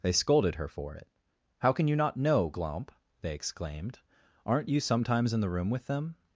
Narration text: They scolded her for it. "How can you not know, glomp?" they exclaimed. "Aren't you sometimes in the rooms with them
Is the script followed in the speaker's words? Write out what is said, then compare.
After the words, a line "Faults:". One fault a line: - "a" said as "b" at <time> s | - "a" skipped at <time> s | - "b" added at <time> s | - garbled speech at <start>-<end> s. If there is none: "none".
They scolded her for it. "How can you not know, glomp?" they exclaimed. "Aren't you sometimes in the room with them
Faults:
- "rooms" said as "room" at 5.5 s